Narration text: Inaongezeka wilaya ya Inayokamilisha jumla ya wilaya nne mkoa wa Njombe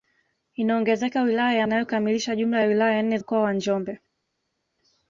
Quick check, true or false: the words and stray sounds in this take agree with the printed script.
true